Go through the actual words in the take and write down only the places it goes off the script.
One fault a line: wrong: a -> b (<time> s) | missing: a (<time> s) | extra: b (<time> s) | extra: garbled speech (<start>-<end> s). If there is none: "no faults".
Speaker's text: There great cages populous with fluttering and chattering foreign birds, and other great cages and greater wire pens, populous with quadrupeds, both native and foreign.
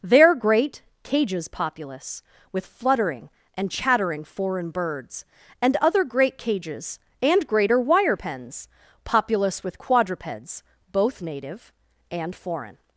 no faults